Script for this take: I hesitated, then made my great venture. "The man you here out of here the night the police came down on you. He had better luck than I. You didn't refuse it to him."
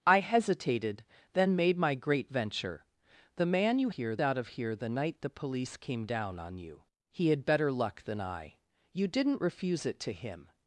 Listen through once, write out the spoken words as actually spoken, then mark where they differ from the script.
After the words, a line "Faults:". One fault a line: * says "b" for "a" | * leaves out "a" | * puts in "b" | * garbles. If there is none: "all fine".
I hesitated, then made my great venture. "The man you here out of here the night the police came down on you. He had better luck than I. You didn't refuse it to him."
Faults:
all fine